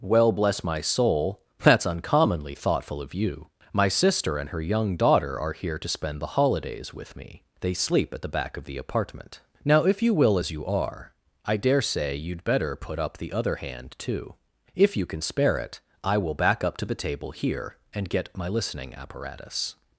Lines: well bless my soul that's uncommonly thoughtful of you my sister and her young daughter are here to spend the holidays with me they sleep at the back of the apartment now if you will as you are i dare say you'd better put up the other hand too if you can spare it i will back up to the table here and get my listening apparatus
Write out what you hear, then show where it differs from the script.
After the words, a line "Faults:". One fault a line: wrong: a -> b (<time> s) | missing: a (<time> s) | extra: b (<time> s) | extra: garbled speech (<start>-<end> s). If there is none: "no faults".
well bless my soul that's uncommonly thoughtful of you my sister and her young daughter are here to spend the holidays with me they sleep at the back of the apartment now if you will as you are i dare say you'd better put up the other hand too if you can spare it i will back up to the table here and get my listening apparatus
Faults:
no faults